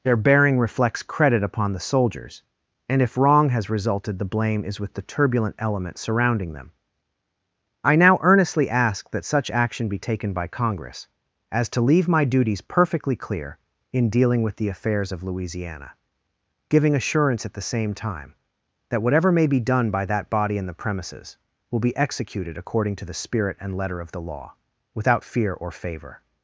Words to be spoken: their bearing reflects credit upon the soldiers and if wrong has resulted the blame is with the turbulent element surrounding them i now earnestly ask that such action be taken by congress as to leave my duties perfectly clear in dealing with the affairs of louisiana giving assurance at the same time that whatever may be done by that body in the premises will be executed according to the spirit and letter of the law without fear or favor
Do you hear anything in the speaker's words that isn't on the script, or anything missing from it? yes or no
no